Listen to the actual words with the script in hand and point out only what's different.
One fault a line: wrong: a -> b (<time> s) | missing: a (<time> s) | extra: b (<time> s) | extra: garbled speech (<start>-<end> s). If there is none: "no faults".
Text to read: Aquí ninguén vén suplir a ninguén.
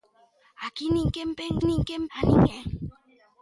wrong: suplir -> ninguén (1.7 s)